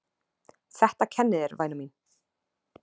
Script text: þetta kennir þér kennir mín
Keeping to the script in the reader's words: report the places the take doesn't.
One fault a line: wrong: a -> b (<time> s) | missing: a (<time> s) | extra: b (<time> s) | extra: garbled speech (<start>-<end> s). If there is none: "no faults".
wrong: kennir -> væna (1.6 s)